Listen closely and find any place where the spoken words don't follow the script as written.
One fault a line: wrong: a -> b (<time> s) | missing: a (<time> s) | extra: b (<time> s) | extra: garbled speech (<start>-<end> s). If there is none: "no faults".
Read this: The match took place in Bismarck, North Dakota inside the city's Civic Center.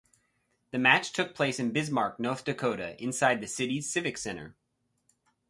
no faults